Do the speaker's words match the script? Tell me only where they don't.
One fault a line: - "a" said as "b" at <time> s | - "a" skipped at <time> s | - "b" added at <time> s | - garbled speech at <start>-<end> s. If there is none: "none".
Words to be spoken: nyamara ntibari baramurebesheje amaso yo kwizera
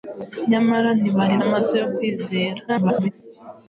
- "baramurebesheje" skipped at 1.4 s
- garbled speech at 2.7-3.1 s